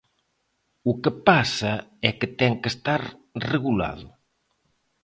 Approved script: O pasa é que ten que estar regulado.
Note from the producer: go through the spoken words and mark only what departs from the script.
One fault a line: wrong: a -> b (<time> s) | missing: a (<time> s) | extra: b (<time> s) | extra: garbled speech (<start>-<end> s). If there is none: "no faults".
extra: que (1.0 s)